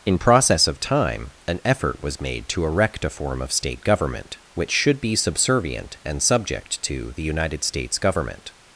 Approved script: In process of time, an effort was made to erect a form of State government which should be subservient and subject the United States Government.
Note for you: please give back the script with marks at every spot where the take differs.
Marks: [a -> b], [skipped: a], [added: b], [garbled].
In process of time, an effort was made to erect a form of State government which should be subservient and subject [added: to] the United States Government.